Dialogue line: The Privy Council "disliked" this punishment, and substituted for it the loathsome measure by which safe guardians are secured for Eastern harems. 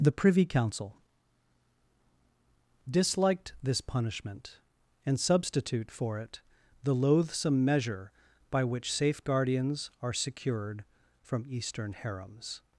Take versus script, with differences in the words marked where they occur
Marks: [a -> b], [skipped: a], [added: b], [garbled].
The Privy Council "disliked" this punishment, and [substituted -> substitute] for it the loathsome measure by which safe guardians are secured [for -> from] Eastern harems.